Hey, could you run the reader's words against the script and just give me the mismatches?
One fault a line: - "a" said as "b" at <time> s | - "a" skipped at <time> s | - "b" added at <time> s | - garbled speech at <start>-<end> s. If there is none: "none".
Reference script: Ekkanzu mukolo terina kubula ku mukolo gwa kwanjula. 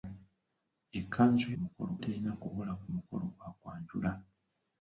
none